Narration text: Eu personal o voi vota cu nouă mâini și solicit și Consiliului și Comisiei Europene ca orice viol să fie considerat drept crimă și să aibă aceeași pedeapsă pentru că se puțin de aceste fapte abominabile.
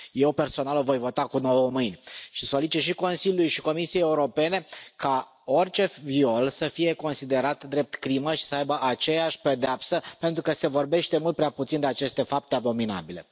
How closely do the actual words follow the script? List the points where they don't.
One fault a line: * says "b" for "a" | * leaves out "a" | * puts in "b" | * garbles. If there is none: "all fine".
* puts in "vorbește mult prea"